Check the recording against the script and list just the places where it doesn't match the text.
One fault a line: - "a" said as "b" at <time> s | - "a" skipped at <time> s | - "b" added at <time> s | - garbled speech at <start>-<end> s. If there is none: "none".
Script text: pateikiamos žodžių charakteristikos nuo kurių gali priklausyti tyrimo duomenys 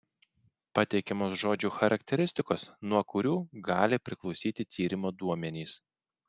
none